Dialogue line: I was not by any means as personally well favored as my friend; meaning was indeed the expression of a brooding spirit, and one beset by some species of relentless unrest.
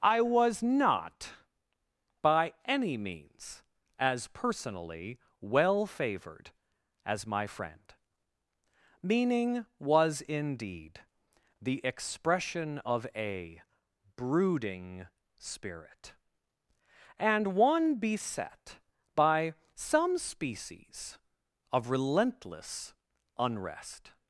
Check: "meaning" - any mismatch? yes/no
no